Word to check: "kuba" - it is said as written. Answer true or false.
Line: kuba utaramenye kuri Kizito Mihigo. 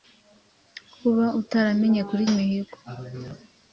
true